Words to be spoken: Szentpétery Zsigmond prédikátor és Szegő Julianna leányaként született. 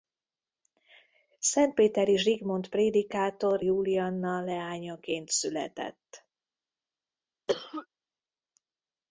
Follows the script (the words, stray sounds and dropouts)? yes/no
no